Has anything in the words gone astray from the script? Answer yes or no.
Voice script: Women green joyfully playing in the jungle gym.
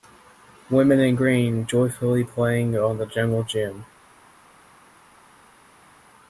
yes